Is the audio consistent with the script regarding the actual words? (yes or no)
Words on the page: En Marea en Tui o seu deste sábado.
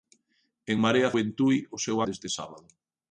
yes